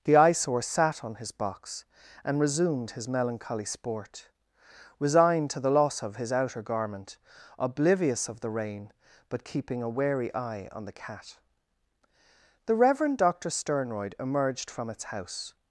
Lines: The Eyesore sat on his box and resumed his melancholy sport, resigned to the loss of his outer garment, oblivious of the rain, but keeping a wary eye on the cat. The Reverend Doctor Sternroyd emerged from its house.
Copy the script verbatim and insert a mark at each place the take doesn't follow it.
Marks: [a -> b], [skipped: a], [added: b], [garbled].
The Eyesore sat on his box and resumed his melancholy sport, resigned to the loss of his outer garment, oblivious of the rain, but keeping a wary eye on the cat. The Reverend Doctor Sternroyd emerged from its house.